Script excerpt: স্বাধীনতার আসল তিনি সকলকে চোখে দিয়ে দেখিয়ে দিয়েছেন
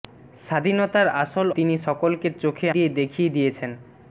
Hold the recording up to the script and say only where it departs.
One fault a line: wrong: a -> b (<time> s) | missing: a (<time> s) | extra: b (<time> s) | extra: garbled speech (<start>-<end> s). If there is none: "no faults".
no faults